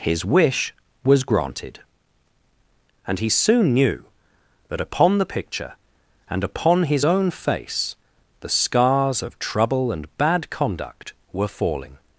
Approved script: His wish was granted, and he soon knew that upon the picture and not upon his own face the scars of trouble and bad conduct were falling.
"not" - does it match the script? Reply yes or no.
no